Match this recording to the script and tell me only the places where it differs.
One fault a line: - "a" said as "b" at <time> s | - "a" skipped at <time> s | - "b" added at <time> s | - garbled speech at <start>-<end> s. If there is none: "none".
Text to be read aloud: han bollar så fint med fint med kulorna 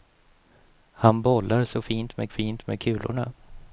none